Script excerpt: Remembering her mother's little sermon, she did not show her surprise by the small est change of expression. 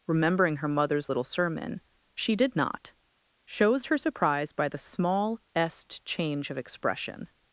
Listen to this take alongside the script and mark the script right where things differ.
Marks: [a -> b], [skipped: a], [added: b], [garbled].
Remembering her mother's little sermon, she did not [show -> shows] her surprise by the small est change of expression.